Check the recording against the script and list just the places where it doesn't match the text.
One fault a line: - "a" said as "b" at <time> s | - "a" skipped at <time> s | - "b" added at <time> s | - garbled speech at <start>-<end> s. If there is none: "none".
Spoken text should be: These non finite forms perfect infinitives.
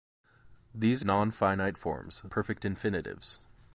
none